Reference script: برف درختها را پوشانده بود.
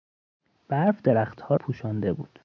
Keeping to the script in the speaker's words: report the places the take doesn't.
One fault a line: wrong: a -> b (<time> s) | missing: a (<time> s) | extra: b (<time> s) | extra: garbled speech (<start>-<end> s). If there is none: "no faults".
missing: را (1.6 s)